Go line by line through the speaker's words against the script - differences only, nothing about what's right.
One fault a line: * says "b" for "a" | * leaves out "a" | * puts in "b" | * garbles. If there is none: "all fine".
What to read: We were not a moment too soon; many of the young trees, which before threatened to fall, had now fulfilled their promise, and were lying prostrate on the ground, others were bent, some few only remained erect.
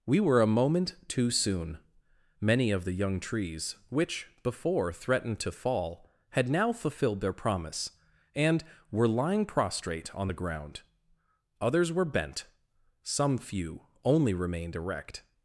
* leaves out "not"